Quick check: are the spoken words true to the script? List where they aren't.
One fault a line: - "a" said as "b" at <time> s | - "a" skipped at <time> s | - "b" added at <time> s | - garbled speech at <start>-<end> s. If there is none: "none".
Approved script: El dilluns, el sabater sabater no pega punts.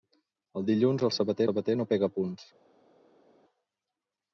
none